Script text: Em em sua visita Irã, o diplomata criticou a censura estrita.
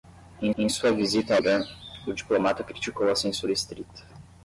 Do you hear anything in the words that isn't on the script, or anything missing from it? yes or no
no